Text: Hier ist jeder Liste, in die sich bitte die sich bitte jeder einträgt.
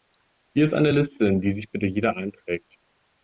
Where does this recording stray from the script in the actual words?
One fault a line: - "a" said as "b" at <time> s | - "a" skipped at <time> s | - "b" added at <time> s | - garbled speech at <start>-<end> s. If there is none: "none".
- "jeder" said as "eine" at 0.7 s
- "die sich bitte" skipped at 1.9 s